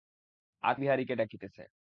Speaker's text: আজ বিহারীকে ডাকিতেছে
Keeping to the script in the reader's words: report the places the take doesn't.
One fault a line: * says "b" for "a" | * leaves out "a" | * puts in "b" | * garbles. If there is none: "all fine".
all fine